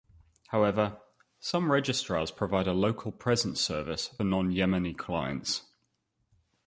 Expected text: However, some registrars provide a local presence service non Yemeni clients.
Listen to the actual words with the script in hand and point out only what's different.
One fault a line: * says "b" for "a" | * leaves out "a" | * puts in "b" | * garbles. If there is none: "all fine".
all fine